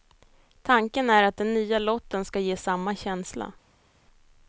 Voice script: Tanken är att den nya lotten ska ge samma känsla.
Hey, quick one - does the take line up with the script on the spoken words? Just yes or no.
yes